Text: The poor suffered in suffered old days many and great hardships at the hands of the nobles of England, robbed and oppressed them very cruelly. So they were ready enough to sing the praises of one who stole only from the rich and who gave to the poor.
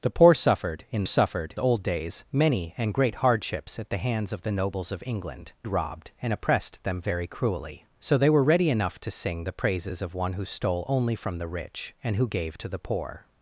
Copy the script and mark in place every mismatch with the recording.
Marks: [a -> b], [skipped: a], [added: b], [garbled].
The poor suffered in suffered old days many and great hardships at the hands of the nobles of England, robbed and oppressed them very cruelly. So they were ready enough to sing the praises of one who stole only from the rich and who gave to the poor.